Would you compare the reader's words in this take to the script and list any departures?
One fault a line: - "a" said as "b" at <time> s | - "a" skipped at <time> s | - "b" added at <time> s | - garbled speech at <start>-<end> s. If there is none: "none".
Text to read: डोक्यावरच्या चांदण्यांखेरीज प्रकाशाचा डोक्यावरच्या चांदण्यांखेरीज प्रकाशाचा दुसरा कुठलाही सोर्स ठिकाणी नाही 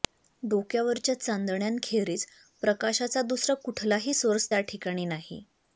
- "डोक्यावरच्या चांदण्यांखेरीज प्रकाशाचा" skipped at 3.2 s
- "त्या" added at 4.5 s